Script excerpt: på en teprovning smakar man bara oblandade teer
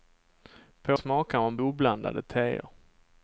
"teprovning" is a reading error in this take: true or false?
true